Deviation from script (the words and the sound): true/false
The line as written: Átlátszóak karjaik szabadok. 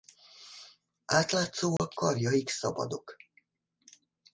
true